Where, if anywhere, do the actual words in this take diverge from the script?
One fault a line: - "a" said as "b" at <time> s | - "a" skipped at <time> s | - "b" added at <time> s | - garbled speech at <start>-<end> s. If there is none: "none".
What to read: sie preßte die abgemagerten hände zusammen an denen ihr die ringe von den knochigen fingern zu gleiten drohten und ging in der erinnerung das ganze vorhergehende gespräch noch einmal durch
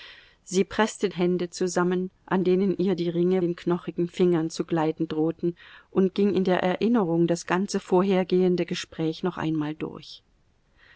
- "die abgemagerten" skipped at 1.1 s
- "von" skipped at 3.4 s